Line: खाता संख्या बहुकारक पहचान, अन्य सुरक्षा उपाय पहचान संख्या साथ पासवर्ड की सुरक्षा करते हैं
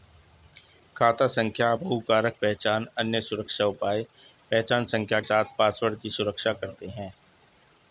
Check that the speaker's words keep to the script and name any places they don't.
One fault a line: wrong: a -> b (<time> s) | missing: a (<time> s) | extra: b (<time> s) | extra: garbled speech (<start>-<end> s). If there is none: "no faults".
no faults